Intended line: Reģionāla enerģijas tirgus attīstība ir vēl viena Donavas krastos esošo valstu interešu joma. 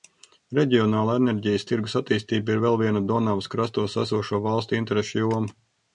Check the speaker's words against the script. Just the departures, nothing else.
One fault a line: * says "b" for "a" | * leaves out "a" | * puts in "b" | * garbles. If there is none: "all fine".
all fine